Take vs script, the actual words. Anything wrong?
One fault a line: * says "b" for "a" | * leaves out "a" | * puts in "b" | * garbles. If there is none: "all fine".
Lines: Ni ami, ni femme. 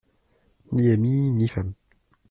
all fine